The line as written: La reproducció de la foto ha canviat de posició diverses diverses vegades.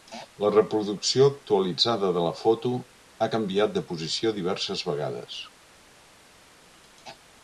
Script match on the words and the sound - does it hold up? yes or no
no